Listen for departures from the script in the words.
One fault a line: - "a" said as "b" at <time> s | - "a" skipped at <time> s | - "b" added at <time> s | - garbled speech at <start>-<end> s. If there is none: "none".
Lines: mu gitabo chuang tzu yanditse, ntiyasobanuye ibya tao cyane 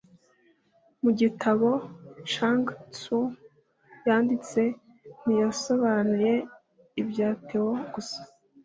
- "cyane" said as "gusa" at 7.9 s